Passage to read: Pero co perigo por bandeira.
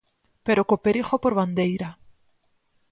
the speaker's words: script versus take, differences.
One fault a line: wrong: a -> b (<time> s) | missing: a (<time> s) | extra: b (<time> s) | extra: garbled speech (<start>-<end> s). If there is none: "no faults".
no faults